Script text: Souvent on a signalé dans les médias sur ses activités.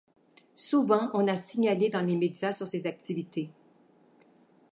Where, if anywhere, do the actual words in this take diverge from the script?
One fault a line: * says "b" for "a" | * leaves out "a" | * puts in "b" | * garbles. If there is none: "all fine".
all fine